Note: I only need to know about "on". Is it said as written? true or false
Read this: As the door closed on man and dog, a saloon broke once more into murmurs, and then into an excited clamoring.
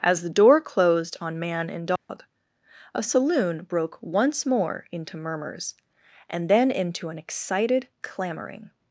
true